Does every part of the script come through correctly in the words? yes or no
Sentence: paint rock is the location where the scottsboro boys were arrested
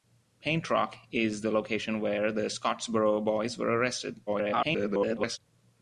no